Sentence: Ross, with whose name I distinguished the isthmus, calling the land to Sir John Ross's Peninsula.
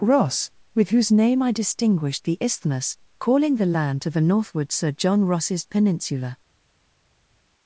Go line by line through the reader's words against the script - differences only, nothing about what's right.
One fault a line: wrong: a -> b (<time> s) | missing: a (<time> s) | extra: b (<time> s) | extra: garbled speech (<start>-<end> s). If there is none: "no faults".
extra: the northward (4.1 s)